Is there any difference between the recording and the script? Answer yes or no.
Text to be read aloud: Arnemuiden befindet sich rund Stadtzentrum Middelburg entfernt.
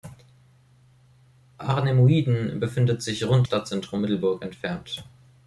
no